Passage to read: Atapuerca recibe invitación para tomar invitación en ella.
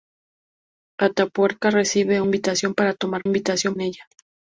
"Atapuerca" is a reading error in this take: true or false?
false